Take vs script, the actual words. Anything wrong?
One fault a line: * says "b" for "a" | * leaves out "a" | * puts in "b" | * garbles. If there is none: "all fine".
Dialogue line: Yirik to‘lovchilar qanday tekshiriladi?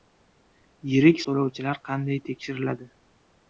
all fine